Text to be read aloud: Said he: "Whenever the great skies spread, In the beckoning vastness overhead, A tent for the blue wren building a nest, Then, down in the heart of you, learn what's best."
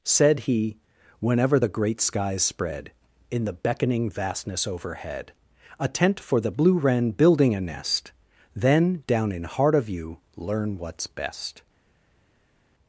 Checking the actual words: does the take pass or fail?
fail